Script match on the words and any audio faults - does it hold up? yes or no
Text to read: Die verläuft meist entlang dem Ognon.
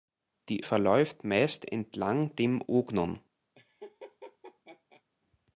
no